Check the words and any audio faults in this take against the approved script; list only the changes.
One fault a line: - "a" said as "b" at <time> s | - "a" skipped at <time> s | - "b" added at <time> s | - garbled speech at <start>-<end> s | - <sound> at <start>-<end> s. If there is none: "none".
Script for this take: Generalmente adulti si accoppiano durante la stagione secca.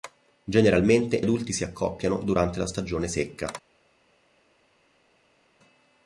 none